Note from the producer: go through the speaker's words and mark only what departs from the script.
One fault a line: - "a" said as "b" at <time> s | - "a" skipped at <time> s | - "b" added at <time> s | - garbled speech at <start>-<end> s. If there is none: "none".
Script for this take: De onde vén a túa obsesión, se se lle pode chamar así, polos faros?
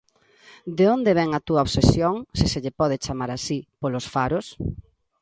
none